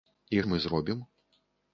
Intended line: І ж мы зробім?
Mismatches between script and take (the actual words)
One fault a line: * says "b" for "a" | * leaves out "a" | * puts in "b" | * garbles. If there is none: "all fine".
all fine